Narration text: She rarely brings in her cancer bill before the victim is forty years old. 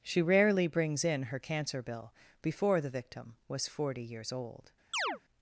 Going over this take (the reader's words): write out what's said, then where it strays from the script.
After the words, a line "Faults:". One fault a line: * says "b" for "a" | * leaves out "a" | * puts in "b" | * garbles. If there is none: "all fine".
She rarely brings in her cancer bill before the victim was forty years old.
Faults:
* says "was" for "is"